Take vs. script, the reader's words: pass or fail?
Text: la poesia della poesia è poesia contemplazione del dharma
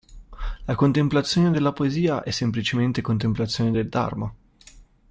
fail